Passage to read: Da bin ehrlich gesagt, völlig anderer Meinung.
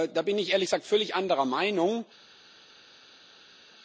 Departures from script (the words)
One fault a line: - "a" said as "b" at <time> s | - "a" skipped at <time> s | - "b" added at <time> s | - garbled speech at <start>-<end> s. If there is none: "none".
- "ich" added at 0.4 s